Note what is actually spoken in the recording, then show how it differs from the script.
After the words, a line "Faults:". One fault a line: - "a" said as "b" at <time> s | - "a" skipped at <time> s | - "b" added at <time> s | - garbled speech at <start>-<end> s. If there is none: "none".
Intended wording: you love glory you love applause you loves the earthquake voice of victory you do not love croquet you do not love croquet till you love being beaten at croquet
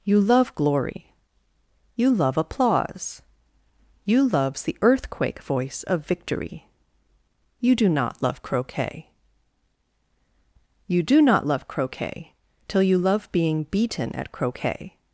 you love glory you love applause you loves the earthquake voice of victory you do not love croquet you do not love croquet till you love being beaten at croquet
Faults:
none